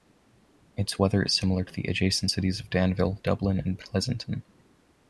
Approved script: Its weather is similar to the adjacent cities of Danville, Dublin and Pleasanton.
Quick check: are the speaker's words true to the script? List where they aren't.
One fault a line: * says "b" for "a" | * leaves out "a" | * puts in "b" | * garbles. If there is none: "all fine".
all fine